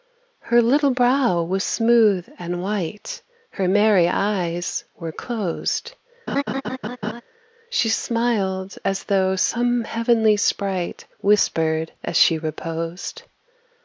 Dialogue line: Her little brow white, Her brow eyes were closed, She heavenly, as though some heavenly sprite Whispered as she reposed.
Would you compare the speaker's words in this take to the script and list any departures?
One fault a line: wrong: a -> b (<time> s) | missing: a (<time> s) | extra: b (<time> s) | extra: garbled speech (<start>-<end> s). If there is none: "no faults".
extra: was smooth and (1.4 s)
wrong: brow -> merry (3.7 s)
wrong: heavenly -> smiled (7.9 s)